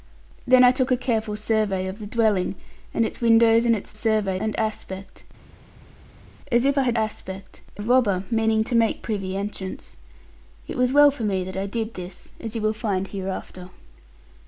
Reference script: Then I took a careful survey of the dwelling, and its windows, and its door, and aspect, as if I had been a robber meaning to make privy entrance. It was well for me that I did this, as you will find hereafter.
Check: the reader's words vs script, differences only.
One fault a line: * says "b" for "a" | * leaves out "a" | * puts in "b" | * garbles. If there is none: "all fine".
* says "survey" for "door"
* says "aspect" for "been"